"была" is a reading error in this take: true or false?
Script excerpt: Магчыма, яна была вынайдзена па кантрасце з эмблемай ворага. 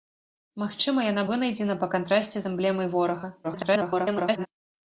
true